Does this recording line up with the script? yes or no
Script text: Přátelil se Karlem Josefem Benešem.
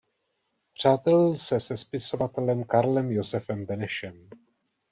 no